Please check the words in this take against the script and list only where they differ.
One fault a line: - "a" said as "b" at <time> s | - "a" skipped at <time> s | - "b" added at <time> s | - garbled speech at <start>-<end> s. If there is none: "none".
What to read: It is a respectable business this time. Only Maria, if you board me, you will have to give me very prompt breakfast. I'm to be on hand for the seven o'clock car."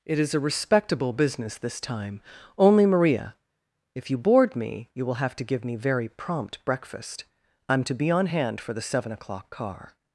none